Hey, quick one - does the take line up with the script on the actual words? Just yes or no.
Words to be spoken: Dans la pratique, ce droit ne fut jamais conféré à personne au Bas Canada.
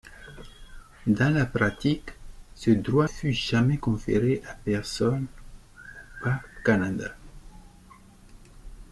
no